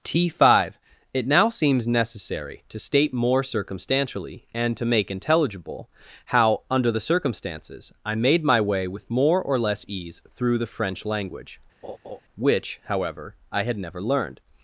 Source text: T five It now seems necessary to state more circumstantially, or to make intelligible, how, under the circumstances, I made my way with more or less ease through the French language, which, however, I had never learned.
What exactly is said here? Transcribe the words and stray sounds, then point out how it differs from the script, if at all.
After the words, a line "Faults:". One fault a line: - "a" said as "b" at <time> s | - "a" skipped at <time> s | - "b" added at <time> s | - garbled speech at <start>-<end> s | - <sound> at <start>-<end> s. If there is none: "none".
T five It now seems necessary to state more circumstantially, and to make intelligible, how, under the circumstances, I made my way with more or less ease through the French language, which, however, I had never learned.
Faults:
- "or" said as "and" at 4.5 s
- laugh at 11.8-12.2 s